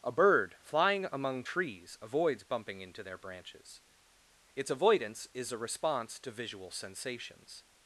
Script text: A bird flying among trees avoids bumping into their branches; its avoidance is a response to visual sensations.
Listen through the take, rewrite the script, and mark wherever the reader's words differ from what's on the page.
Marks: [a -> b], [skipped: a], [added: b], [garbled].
A bird flying among trees avoids bumping into their branches; its avoidance is a response to visual sensations.